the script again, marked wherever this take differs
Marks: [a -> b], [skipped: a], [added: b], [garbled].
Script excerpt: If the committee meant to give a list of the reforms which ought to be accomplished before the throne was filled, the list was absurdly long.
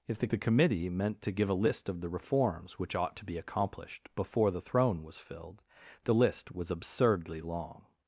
If the [added: the] committee meant to give a list of the reforms which ought to be accomplished before the throne was filled, the list was absurdly long.